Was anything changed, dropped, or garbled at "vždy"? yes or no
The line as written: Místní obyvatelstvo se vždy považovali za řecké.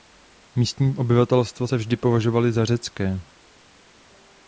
no